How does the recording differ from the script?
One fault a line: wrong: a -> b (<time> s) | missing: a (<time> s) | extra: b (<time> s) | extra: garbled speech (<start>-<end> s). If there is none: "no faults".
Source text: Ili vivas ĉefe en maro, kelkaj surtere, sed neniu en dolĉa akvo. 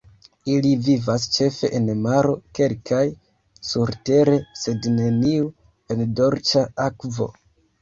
no faults